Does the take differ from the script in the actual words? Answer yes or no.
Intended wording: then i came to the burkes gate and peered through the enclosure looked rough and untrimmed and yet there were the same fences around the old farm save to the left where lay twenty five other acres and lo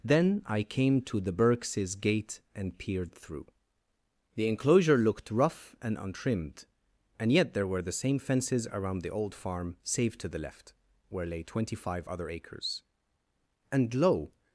no